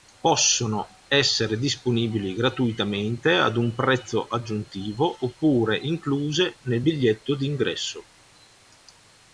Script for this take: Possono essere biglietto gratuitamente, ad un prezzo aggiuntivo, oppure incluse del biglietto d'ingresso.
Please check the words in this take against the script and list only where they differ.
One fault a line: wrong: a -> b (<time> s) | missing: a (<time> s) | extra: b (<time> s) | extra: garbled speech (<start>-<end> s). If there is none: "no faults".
wrong: biglietto -> disponibili (1.6 s)
wrong: del -> nel (6.6 s)